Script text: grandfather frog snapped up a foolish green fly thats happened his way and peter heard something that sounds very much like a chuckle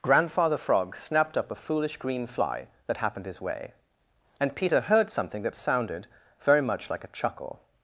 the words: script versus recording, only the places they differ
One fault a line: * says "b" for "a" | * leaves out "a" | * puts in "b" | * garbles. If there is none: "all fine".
* says "that" for "thats"
* says "sounded" for "sounds"